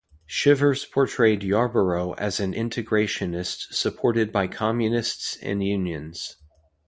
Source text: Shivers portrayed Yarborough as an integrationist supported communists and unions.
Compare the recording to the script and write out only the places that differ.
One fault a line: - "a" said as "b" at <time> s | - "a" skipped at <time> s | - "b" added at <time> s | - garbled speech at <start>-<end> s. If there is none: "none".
- "by" added at 4.3 s